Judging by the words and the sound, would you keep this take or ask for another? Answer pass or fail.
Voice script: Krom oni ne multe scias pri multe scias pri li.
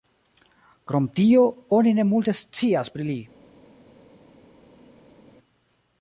fail